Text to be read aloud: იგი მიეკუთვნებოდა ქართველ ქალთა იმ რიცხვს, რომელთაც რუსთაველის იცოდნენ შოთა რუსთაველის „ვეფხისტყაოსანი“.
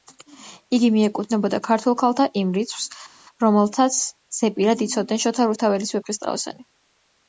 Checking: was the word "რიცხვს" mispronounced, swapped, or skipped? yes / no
no